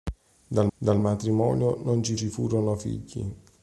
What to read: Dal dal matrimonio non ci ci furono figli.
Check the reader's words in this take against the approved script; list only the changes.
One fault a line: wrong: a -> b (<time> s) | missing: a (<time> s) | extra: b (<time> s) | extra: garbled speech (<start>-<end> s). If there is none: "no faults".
no faults